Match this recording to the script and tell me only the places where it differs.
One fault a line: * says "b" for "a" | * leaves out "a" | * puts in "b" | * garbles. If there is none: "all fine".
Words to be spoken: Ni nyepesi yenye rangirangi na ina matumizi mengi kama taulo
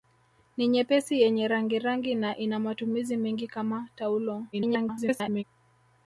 * garbles